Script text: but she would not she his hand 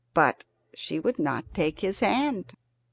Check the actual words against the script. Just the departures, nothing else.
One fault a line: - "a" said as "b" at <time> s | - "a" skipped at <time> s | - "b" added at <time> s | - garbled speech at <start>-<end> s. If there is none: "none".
- "she" said as "take" at 1.5 s